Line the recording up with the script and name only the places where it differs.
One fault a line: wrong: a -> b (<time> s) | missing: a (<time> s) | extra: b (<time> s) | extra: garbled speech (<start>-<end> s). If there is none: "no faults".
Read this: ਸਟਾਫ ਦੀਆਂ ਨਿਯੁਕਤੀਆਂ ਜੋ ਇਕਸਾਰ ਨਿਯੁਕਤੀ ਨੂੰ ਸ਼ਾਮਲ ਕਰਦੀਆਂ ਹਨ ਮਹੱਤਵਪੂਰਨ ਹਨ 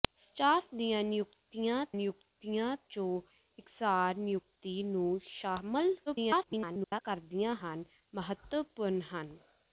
extra: ਨਿਯੁਕਤੀਆਂ (1.9 s)
extra: garbled speech (6.1-7.0 s)